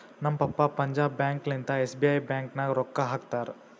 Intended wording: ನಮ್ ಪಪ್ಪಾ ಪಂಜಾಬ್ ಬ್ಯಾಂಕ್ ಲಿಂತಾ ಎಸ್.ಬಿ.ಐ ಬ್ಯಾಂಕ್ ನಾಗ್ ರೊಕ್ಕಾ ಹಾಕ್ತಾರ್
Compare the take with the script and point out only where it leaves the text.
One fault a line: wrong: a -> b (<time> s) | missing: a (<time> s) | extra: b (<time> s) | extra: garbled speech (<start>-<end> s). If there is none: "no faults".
no faults